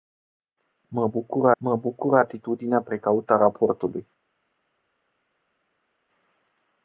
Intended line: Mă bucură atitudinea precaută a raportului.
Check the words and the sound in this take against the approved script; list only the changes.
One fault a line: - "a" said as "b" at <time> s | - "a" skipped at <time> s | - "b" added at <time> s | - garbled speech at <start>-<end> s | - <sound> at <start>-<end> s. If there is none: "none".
- "mă bucură" added at 1.6 s